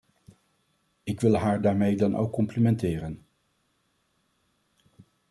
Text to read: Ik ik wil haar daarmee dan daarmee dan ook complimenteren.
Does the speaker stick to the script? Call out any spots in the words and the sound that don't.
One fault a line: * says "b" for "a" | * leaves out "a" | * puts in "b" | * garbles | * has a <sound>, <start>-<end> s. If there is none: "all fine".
* leaves out "ik"
* leaves out "daarmee dan"